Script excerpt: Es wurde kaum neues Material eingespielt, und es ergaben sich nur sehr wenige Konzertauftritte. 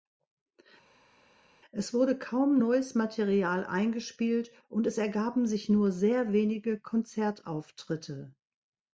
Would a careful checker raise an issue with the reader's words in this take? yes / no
no